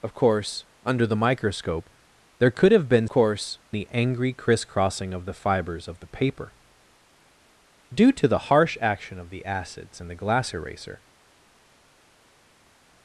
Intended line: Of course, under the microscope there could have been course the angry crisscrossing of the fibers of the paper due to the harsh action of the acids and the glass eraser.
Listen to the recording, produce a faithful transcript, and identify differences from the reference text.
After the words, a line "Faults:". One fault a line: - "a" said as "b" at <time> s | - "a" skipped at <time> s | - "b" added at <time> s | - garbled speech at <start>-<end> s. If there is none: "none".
Of course, under the microscope there could have been course the angry crisscrossing of the fibers of the paper due to the harsh action of the acids and the glass eraser.
Faults:
none